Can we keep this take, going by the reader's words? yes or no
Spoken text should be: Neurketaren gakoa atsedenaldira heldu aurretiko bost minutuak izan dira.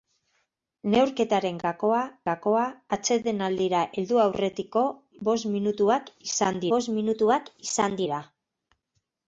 no